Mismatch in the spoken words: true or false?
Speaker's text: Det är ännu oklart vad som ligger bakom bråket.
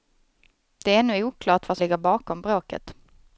true